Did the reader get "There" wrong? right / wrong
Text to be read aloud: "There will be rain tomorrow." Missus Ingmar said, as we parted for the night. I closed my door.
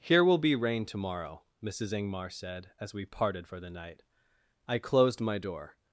wrong